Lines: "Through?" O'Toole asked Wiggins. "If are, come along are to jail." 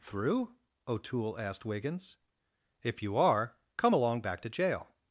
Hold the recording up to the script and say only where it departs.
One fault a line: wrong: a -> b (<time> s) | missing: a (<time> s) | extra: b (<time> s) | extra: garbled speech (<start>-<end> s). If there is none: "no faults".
extra: you (3.0 s)
wrong: are -> back (4.2 s)